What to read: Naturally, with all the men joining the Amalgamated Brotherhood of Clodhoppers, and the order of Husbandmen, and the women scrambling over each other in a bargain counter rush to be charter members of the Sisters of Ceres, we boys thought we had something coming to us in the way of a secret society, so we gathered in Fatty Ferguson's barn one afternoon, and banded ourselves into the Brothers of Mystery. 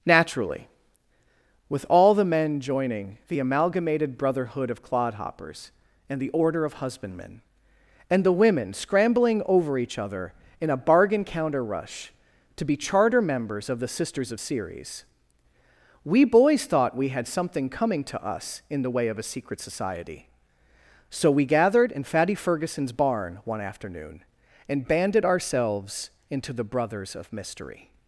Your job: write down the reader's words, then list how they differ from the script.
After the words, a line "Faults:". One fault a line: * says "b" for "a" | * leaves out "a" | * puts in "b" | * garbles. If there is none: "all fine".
Naturally, with all the men joining the Amalgamated Brotherhood of Clodhoppers, and the order of Husbandmen, and the women scrambling over each other in a bargain counter rush to be charter members of the Sisters of Ceres, we boys thought we had something coming to us in the way of a secret society, so we gathered in Fatty Ferguson's barn one afternoon, and banded ourselves into the Brothers of Mystery.
Faults:
all fine